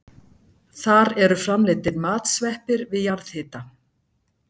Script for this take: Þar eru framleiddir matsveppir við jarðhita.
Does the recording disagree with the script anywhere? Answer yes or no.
no